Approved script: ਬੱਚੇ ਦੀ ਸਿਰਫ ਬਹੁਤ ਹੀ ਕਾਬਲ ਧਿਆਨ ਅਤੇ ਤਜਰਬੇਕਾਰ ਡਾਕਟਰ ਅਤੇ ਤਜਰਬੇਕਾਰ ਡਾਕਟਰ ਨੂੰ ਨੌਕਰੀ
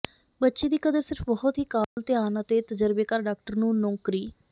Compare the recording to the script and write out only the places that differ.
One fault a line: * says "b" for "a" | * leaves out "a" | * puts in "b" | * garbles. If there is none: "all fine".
* puts in "ਕਦਰ"
* leaves out "ਅਤੇ ਤਜਰਬੇਕਾਰ ਡਾਕਟਰ"